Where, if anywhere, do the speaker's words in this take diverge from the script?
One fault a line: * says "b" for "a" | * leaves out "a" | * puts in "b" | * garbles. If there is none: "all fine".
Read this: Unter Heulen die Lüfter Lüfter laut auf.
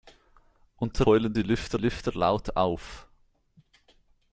all fine